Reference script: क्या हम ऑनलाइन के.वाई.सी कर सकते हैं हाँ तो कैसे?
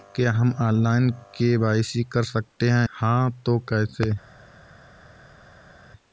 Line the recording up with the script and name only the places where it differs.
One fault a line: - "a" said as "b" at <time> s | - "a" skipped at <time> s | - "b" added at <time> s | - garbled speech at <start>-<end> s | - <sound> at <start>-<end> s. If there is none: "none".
none